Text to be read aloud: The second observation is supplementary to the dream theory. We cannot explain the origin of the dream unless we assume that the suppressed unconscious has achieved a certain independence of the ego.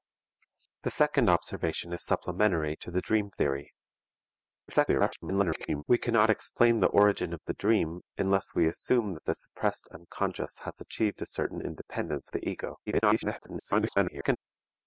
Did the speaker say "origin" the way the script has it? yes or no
yes